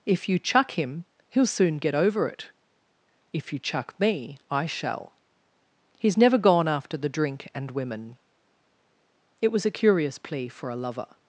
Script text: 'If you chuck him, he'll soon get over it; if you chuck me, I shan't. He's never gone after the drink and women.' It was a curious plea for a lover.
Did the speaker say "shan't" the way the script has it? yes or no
no